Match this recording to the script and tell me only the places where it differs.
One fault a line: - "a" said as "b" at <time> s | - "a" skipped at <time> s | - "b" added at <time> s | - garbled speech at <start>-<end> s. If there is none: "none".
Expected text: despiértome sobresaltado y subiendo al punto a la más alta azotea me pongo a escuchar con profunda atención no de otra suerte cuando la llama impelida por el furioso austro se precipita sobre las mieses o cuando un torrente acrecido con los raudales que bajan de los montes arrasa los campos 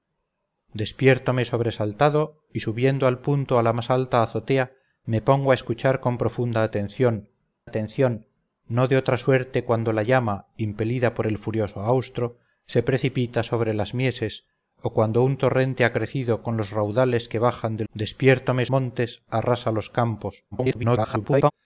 - "atención" added at 7.6 s
- "los" said as "despiértome" at 17.9 s
- garbled speech at 20.5-21.5 s